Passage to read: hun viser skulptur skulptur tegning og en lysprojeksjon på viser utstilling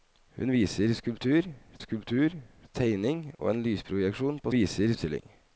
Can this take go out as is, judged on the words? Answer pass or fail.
pass